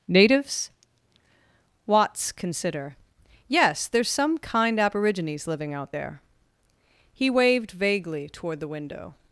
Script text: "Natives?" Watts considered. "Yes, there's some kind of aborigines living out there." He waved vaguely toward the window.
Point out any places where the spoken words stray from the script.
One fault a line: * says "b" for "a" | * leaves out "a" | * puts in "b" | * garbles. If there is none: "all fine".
* says "consider" for "considered"
* leaves out "of"